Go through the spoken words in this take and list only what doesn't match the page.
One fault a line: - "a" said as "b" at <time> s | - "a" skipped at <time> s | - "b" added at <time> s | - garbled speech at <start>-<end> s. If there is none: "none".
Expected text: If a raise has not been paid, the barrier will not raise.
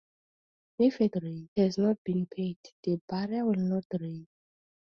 none